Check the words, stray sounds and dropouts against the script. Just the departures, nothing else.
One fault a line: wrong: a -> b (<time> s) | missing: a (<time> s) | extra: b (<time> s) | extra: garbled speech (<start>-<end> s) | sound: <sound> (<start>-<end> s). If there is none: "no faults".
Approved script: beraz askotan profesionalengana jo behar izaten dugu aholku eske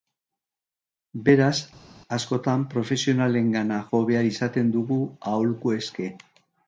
no faults